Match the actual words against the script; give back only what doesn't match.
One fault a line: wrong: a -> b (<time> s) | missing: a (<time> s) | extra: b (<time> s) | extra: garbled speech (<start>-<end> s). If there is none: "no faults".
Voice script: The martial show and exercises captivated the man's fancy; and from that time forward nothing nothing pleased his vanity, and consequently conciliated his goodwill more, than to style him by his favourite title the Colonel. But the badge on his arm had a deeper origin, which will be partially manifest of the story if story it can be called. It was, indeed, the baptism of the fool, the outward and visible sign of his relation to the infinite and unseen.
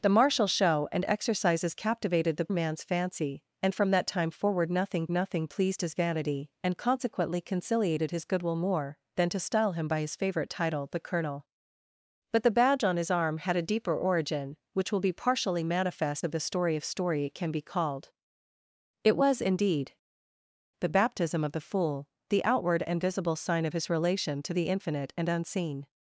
no faults